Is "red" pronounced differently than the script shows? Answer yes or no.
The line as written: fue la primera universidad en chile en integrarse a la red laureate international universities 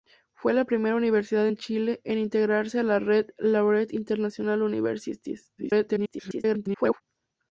no